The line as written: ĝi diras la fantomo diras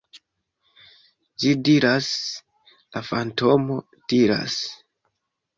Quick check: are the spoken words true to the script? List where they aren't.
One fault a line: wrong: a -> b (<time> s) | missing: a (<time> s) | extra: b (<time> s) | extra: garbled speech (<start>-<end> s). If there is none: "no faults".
no faults